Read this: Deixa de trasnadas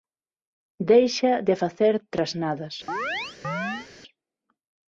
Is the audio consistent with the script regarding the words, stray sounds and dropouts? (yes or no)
no